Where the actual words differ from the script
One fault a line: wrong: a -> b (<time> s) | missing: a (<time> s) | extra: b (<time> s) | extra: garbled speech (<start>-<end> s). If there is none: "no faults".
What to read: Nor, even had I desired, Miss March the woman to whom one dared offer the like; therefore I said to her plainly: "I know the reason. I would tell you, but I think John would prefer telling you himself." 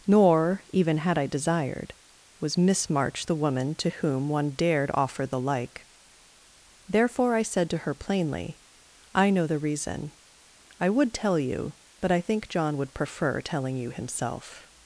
extra: was (2.4 s)